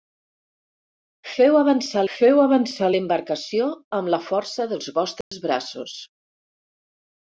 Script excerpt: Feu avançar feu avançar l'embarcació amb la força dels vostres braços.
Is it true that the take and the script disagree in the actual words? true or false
false